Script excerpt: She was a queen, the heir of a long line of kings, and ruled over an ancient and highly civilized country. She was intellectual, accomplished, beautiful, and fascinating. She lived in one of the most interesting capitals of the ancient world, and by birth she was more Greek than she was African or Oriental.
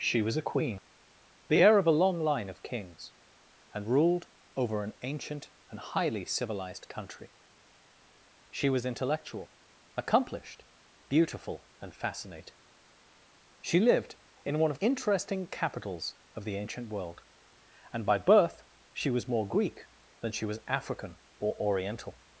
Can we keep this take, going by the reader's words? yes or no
no